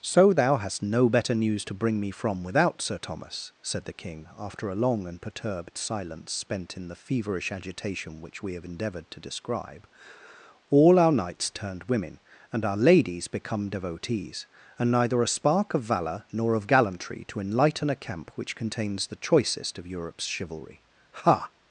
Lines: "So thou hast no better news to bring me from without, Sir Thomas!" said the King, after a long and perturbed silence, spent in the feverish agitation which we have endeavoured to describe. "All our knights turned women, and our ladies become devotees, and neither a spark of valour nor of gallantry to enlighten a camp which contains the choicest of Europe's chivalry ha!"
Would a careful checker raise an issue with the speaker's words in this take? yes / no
no